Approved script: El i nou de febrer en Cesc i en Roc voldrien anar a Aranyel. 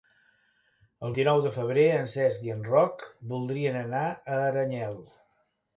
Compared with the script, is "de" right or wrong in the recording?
right